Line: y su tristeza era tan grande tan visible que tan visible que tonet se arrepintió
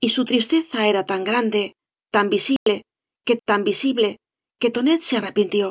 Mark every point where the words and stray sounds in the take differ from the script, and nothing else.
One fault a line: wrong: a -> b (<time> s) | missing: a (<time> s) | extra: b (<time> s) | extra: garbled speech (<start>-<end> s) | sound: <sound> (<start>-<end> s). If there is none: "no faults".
sound: dropout (2.6-2.7 s)